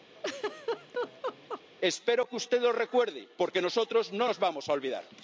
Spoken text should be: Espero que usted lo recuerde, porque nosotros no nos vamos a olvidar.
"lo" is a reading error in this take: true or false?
false